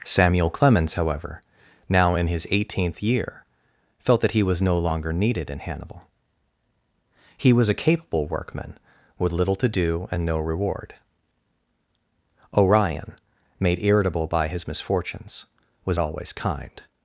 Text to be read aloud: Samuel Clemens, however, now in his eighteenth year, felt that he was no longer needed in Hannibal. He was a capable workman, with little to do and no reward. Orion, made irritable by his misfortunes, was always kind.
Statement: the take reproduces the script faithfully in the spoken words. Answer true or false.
true